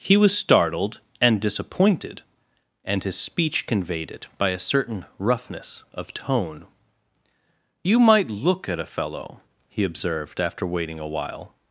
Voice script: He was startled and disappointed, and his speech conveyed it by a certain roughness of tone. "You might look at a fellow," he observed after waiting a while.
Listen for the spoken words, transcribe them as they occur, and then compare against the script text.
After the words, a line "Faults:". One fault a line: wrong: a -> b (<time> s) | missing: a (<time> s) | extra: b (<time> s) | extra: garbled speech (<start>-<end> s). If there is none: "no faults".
He was startled and disappointed, and his speech conveyed it by a certain roughness of tone. "You might look at a fellow," he observed after waiting a while.
Faults:
no faults